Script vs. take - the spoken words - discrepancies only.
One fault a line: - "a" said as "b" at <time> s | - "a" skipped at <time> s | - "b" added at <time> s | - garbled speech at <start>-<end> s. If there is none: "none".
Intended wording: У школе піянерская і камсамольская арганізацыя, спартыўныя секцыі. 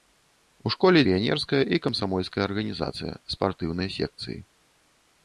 none